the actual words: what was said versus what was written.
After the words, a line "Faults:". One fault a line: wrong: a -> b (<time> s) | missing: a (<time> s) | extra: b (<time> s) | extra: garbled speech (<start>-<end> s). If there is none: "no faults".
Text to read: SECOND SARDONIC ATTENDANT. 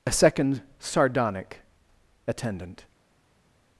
a SECOND SARDONIC ATTENDANT.
Faults:
extra: a (0.1 s)